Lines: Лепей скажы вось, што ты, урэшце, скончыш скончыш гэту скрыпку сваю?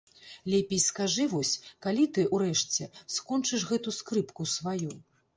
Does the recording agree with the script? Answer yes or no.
no